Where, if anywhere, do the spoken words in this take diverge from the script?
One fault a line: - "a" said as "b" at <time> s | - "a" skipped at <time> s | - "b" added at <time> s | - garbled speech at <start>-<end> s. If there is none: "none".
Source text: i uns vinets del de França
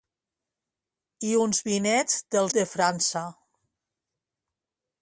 none